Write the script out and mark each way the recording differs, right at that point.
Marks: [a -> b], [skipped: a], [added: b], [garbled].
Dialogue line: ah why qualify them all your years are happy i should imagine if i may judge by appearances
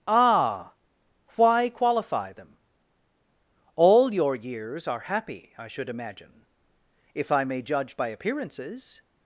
ah why qualify them all your years are happy i should imagine if i may judge by appearances